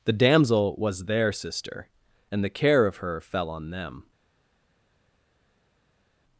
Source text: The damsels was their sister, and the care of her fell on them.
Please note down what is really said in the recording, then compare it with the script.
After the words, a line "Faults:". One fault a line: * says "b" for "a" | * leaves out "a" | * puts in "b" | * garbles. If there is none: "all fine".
The damsel was their sister, and the care of her fell on them.
Faults:
* says "damsel" for "damsels"